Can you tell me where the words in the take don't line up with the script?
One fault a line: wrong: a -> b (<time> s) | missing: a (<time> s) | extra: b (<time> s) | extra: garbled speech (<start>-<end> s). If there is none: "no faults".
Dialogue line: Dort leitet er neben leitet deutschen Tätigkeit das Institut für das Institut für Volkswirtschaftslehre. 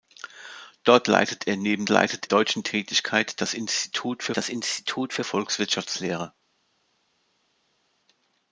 no faults